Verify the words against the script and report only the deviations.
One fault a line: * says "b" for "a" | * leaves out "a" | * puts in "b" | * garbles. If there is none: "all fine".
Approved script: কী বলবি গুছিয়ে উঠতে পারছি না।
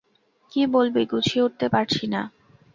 all fine